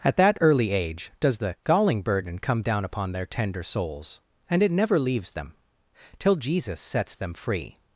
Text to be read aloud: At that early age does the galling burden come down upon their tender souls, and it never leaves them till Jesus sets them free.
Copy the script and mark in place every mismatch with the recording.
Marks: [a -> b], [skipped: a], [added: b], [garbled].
At that early age does the galling burden come down upon their tender souls, and it never leaves them till Jesus sets them free.